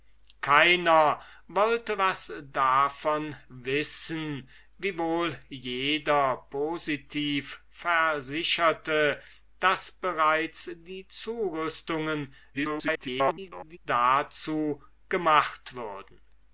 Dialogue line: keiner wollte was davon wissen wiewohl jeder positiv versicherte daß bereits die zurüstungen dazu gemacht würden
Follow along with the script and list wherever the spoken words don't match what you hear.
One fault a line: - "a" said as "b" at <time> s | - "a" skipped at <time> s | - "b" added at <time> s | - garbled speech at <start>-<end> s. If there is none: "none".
- garbled speech at 12.5-13.8 s